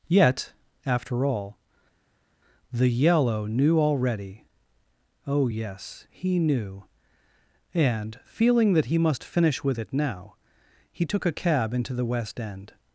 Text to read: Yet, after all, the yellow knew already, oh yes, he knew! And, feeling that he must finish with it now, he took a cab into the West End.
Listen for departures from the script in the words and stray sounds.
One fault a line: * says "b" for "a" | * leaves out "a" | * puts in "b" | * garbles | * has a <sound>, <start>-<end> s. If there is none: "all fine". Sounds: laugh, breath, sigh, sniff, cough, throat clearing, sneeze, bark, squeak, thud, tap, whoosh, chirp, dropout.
all fine